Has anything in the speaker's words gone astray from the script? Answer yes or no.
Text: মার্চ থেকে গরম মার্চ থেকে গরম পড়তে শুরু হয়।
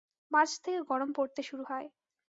yes